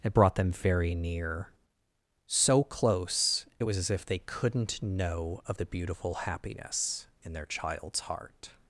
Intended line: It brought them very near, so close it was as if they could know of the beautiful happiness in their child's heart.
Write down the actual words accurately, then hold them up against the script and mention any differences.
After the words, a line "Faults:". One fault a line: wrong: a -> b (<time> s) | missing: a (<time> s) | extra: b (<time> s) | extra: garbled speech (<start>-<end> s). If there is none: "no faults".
It brought them very near, so close it was as if they couldn't know of the beautiful happiness in their child's heart.
Faults:
wrong: could -> couldn't (4.2 s)